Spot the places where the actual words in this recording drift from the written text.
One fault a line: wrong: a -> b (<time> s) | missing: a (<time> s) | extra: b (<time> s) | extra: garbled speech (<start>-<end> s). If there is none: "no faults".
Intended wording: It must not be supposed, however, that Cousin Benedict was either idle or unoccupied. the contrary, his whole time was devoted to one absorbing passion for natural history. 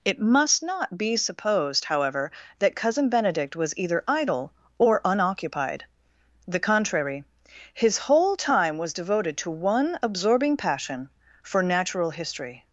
no faults